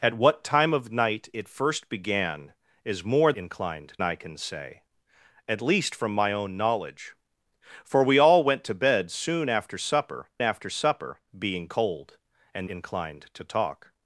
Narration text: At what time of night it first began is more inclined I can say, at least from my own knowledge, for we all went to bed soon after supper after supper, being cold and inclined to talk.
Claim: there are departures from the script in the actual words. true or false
false